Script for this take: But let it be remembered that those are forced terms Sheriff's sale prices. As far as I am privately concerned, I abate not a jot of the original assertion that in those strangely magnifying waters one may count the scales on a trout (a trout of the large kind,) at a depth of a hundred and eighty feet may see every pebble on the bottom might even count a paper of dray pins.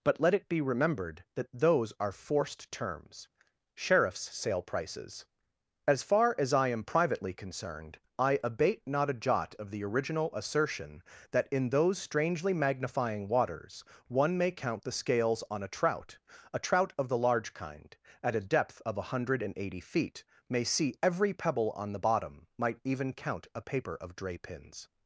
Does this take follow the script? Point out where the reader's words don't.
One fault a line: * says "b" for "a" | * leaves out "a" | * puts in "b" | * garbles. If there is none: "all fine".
all fine